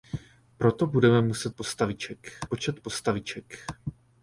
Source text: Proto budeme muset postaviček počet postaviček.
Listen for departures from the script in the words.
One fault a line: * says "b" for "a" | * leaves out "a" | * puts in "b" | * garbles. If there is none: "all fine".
all fine